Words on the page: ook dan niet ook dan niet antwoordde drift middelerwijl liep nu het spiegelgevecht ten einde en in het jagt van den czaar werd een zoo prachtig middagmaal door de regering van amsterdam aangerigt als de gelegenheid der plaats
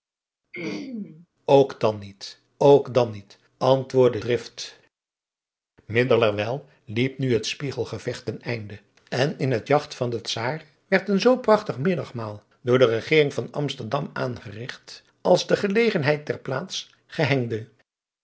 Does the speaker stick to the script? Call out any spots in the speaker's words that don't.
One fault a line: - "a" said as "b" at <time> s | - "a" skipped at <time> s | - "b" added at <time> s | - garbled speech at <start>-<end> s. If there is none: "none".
none